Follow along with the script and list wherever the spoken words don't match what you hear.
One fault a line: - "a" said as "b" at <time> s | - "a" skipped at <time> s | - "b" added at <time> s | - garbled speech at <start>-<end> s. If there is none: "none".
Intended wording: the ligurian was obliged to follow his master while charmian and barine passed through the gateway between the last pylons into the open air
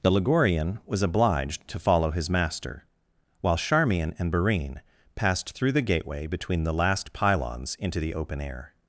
none